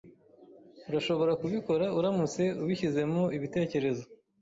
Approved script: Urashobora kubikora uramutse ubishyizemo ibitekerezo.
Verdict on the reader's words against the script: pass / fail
pass